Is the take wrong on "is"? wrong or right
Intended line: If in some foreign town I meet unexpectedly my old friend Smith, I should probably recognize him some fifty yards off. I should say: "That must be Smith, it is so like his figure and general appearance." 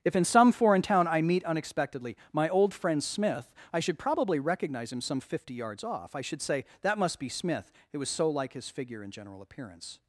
wrong